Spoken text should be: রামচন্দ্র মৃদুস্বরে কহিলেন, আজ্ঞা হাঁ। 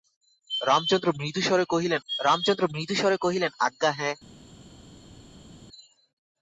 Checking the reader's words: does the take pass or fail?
fail